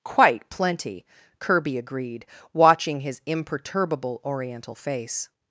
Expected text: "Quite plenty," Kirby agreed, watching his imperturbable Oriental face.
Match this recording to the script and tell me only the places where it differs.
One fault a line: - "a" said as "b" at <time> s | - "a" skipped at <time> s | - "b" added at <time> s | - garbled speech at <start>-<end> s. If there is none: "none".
none